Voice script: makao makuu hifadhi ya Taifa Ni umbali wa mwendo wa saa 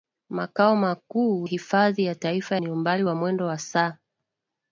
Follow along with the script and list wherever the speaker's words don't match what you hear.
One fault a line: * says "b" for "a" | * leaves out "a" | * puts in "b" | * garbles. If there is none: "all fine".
all fine